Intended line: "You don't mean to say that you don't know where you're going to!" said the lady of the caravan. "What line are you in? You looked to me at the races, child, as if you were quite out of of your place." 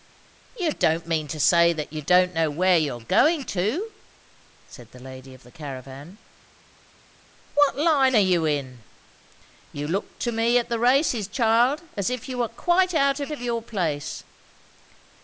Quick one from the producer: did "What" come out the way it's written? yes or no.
yes